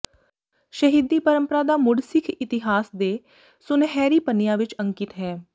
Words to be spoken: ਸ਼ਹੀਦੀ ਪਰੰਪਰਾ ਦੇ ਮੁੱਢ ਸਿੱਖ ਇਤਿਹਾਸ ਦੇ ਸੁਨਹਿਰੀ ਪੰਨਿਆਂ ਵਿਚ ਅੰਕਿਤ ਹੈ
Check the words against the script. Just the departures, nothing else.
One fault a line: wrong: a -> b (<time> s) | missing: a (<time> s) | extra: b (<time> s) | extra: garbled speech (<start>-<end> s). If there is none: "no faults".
wrong: ਦੇ -> ਦਾ (1.6 s)